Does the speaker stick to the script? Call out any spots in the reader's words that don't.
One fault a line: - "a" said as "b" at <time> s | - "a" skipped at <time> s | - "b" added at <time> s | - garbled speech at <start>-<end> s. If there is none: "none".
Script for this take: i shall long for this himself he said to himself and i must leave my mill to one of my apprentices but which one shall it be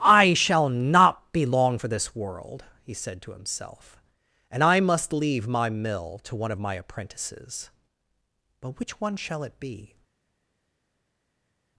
- "not be" added at 0.7 s
- "himself" said as "world" at 2.2 s